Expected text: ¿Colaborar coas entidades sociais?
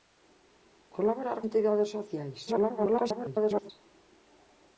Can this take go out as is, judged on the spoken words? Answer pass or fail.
fail